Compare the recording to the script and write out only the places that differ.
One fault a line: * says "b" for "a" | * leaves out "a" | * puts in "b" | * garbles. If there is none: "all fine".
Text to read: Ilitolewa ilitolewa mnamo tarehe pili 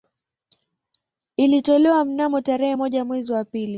* leaves out "ilitolewa"
* puts in "moja mwezi wa"